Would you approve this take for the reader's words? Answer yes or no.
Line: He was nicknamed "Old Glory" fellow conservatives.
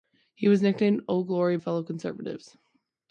yes